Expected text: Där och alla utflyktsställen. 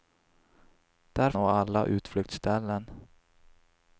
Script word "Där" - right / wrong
right